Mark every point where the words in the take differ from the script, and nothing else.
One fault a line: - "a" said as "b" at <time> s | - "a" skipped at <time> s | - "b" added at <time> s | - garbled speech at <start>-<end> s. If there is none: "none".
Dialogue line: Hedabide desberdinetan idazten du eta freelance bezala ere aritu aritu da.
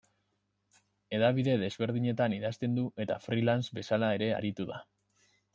- "aritu" skipped at 4.7 s